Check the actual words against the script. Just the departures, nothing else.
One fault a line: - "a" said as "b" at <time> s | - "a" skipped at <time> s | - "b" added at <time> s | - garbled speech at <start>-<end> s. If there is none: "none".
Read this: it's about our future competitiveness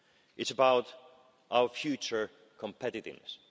none